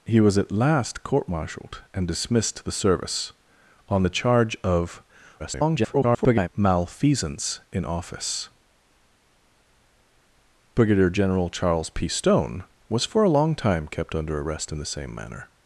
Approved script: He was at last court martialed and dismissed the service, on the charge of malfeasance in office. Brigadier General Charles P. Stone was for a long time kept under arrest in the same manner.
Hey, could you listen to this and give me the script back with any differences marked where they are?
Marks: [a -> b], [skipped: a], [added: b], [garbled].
He was at last court martialed and dismissed the service, on the charge of [garbled] malfeasance in office. Brigadier General Charles P. Stone was for a long time kept under arrest in the same manner.